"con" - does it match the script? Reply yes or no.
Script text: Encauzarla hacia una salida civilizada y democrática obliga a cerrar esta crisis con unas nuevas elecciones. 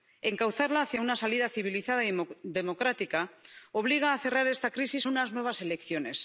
no